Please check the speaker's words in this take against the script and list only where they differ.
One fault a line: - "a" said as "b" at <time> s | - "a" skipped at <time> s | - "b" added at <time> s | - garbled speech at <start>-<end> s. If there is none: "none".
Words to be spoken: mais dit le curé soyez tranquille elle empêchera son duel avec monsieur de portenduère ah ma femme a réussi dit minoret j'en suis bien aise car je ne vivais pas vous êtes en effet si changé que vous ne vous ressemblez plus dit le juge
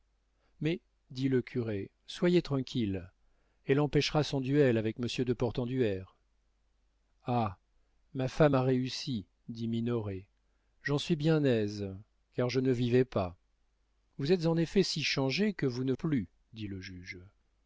- "vous ressemblez" skipped at 15.9 s